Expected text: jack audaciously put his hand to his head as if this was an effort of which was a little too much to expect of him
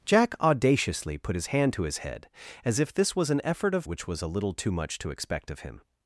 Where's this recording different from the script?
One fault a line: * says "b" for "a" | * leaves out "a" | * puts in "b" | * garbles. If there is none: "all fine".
all fine